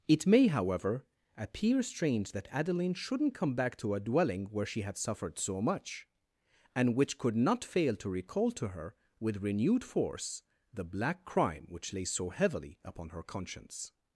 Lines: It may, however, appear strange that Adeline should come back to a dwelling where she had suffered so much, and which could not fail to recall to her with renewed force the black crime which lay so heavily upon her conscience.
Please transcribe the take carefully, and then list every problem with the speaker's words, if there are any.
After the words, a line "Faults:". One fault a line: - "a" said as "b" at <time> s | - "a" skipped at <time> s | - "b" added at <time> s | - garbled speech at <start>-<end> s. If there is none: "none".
It may, however, appear strange that Adeline shouldn't come back to a dwelling where she had suffered so much, and which could not fail to recall to her with renewed force the black crime which lay so heavily upon her conscience.
Faults:
- "should" said as "shouldn't" at 2.9 s